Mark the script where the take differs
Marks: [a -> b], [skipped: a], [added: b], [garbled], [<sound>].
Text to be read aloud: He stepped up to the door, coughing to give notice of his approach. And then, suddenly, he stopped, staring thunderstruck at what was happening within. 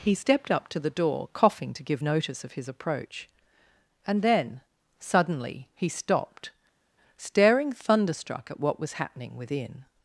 He stepped up to the door, coughing to give notice of his approach. And then, suddenly, he stopped, staring thunderstruck at what was happening within.